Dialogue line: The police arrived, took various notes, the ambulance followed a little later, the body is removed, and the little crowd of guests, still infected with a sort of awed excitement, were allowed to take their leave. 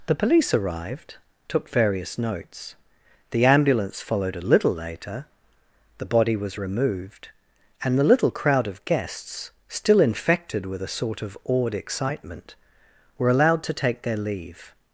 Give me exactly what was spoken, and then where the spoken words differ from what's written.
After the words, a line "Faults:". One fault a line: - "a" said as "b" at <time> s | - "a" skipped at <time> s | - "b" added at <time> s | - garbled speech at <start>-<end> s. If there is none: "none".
The police arrived, took various notes, the ambulance followed a little later, the body was removed, and the little crowd of guests, still infected with a sort of awed excitement, were allowed to take their leave.
Faults:
- "is" said as "was" at 6.3 s